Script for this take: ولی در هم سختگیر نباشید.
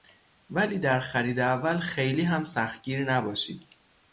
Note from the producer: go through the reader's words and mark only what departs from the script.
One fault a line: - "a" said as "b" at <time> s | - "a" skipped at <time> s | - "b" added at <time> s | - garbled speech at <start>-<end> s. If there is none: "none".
- "خرید اول خیلی" added at 1.0 s